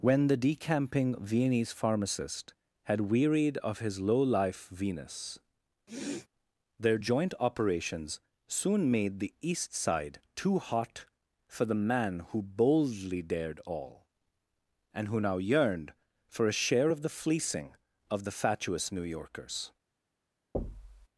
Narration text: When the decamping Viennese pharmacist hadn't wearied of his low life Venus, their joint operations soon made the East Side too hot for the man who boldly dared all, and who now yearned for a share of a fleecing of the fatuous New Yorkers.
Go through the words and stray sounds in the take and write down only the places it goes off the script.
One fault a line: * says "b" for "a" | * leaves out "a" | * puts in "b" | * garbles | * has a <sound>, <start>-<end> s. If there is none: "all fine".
* says "had" for "hadn't"
* has a sniff, 5.9-6.3 s
* says "the" for "a"
* has a thud, 20.5-21.1 s